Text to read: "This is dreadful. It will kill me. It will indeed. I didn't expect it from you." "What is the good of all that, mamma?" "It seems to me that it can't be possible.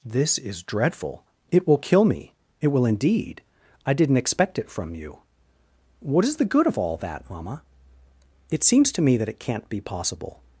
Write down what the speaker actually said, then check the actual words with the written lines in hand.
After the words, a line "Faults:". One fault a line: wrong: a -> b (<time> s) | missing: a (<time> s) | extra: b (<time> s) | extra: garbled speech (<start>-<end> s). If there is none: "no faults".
"This is dreadful. It will kill me. It will indeed. I didn't expect it from you." "What is the good of all that, mamma?" "It seems to me that it can't be possible.
Faults:
no faults